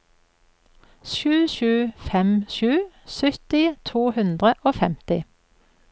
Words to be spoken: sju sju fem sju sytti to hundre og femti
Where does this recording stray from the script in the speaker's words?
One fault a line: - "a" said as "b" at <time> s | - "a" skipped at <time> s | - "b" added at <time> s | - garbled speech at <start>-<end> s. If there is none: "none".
none